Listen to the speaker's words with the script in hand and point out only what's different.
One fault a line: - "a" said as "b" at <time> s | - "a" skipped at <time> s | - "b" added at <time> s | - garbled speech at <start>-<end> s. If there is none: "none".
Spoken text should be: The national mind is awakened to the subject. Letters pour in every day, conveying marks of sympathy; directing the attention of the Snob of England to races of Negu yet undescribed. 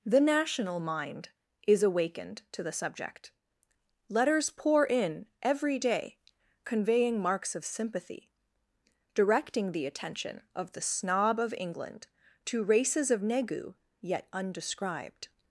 none